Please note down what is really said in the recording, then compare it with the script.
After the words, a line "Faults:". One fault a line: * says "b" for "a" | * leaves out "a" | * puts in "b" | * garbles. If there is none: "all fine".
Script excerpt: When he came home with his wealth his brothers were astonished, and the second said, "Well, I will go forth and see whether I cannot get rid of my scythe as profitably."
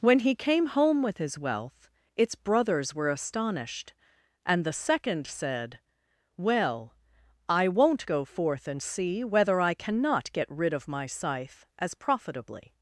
When he came home with his wealth its brothers were astonished, and the second said, "Well, I won't go forth and see whether I cannot get rid of my scythe as profitably."
Faults:
* says "its" for "his"
* says "won't" for "will"